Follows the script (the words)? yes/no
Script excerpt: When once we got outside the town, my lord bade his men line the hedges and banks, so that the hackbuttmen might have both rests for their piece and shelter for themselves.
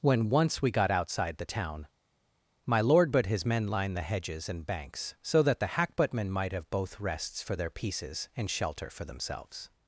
no